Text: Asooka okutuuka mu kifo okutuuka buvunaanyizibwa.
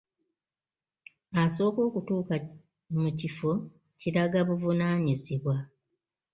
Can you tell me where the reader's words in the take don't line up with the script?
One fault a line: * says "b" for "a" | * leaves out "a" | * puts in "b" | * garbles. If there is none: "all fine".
* says "kiraga" for "okutuuka"